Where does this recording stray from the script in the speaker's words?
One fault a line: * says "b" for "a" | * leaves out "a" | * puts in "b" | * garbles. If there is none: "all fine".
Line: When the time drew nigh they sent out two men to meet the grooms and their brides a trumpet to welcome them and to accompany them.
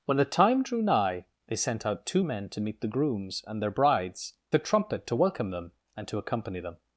all fine